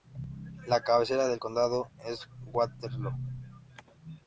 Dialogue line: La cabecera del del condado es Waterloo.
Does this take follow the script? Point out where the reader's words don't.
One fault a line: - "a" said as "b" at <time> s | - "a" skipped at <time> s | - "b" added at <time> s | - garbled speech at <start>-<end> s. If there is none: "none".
- "del" skipped at 1.4 s